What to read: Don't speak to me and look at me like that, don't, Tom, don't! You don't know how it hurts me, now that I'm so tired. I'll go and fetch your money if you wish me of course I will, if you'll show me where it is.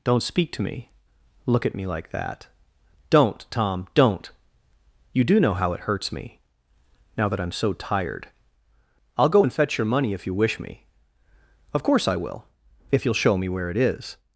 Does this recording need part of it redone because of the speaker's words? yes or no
yes